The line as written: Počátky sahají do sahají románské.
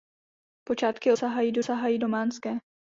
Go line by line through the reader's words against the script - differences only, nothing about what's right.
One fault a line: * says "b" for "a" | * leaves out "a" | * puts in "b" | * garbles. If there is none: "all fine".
all fine